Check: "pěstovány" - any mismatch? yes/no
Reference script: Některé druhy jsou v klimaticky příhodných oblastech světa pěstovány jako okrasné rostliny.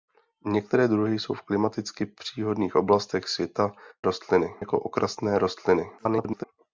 yes